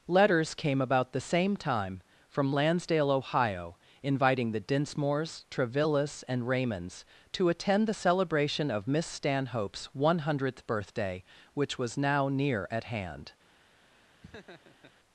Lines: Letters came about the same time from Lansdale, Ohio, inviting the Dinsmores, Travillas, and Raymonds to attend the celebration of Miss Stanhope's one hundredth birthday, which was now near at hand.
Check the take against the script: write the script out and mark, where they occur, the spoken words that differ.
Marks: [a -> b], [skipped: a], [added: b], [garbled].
Letters came about the same time from Lansdale, Ohio, inviting the Dinsmores, Travillas, and Raymonds to attend the celebration of Miss Stanhope's one hundredth birthday, which was now near at hand.